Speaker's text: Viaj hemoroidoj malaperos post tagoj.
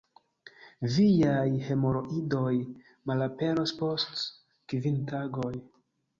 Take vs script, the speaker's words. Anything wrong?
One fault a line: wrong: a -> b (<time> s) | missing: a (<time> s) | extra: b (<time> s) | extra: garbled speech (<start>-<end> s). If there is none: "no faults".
extra: kvin (4.8 s)